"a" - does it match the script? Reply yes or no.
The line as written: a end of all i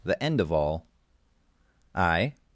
no